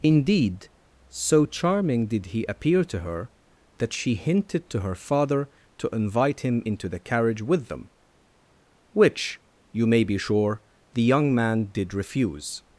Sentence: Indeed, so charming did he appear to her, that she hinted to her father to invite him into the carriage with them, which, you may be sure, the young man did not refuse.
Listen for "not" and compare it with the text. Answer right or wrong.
wrong